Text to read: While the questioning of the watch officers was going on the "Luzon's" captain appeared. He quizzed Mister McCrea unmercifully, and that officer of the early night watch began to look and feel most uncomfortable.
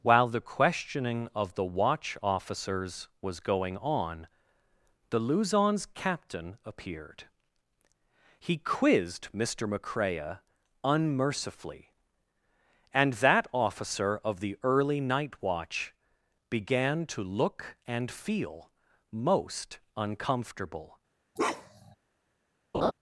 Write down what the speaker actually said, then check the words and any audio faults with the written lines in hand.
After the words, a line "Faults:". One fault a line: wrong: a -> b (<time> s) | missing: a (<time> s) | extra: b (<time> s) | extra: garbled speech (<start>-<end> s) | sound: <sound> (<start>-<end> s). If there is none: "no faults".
While the questioning of the watch officers was going on the "Luzon's" captain appeared. He quizzed Mister McCrea unmercifully, and that officer of the early night watch began to look and feel most uncomfortable.
Faults:
sound: bark (21.4-22.0 s)
sound: laugh (22.7-22.9 s)